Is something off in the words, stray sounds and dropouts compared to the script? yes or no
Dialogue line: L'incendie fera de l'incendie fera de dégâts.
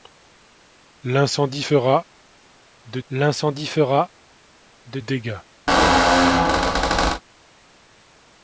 yes